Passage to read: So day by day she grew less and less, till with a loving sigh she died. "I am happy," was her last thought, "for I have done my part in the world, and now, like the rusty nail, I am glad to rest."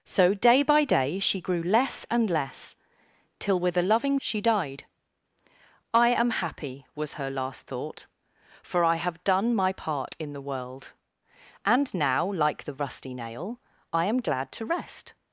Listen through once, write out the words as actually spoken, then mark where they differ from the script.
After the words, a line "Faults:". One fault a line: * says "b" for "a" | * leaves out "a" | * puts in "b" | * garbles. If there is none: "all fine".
So day by day she grew less and less, till with a loving she died. "I am happy," was her last thought, "for I have done my part in the world, and now, like the rusty nail, I am glad to rest."
Faults:
* leaves out "sigh"